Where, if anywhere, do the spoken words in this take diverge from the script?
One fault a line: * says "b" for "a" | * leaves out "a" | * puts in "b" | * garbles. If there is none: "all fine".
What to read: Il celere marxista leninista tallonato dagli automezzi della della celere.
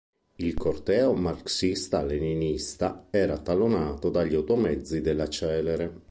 * says "corteo" for "celere"
* puts in "era"
* leaves out "della"